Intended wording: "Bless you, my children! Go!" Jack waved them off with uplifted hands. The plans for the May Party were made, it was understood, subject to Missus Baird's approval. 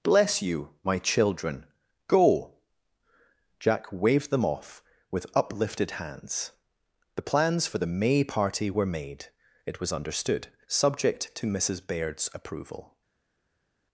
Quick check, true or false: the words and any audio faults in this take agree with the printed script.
true